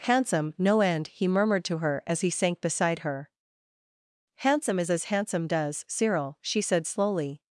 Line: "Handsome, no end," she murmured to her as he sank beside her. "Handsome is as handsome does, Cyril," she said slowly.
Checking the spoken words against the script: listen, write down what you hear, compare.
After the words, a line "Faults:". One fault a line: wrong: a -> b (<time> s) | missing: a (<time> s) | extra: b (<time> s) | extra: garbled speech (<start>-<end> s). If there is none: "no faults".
"Handsome, no end," he murmured to her as he sank beside her. "Handsome is as handsome does, Cyril," she said slowly.
Faults:
wrong: she -> he (1.1 s)